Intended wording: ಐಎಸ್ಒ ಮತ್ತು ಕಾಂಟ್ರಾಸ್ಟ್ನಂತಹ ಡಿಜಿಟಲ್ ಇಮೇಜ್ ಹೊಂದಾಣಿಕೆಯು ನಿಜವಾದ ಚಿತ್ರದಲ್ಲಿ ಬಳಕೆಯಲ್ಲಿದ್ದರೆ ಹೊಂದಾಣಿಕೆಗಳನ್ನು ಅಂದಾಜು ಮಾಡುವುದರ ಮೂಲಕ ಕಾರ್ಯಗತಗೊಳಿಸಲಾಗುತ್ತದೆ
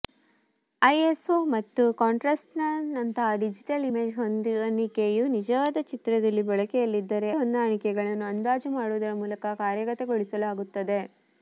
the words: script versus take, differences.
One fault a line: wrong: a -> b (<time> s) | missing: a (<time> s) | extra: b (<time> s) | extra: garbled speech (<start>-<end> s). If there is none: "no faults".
no faults